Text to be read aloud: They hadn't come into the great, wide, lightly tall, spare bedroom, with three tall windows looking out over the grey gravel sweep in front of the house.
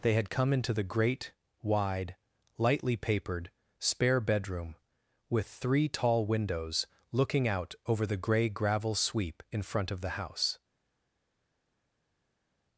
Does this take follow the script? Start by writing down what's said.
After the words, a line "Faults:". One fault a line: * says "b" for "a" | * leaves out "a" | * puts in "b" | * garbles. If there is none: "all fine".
They had come into the great, wide, lightly papered, spare bedroom, with three tall windows looking out over the grey gravel sweep in front of the house.
Faults:
* says "had" for "hadn't"
* says "papered" for "tall"